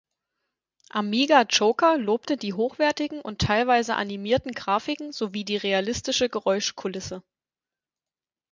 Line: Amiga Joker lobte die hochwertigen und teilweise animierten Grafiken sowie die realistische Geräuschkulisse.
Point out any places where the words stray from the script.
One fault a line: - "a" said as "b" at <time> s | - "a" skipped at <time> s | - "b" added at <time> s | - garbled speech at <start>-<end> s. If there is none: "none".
none